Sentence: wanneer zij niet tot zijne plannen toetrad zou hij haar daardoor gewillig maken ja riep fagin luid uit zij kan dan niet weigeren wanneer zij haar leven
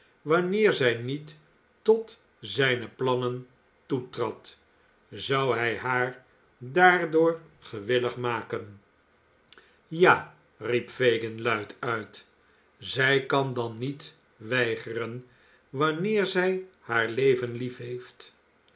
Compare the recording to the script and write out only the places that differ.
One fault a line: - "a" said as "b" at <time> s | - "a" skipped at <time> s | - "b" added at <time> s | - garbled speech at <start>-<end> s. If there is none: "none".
none